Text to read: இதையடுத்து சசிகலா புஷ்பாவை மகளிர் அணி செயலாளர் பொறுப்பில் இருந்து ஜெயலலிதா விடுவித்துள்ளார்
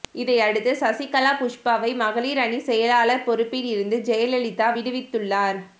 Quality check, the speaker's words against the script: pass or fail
pass